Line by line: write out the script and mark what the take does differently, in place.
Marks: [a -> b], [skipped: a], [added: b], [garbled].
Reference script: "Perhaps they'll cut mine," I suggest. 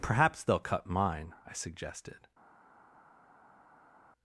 "Perhaps they'll cut mine," I [suggest. -> suggested]